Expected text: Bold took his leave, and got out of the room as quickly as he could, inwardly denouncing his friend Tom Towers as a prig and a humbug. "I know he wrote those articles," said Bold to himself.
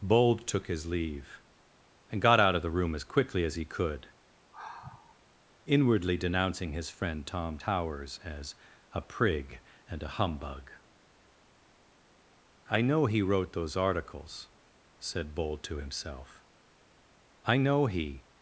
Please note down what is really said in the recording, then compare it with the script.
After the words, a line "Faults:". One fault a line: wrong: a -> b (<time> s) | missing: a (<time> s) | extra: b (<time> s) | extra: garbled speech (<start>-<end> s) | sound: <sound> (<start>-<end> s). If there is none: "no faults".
Bold took his leave, and got out of the room as quickly as he could, inwardly denouncing his friend Tom Towers as a prig and a humbug. "I know he wrote those articles," said Bold to himself. "I know he
Faults:
sound: sigh (4.5-5.2 s)
extra: I know he (17.4 s)